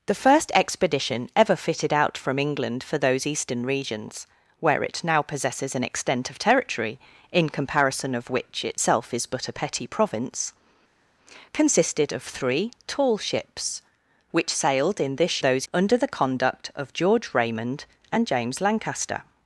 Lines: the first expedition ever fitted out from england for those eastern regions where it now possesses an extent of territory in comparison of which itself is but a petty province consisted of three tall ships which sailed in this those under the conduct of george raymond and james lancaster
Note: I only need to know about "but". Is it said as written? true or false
true